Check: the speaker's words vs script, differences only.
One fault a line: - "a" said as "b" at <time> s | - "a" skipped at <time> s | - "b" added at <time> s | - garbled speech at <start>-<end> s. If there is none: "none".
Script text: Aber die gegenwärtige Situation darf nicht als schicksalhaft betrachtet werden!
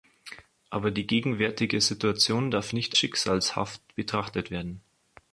- "als" skipped at 3.0 s